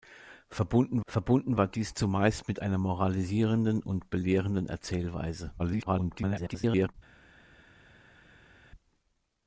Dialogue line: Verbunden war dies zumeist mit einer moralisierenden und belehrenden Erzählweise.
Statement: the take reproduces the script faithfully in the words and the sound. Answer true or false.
false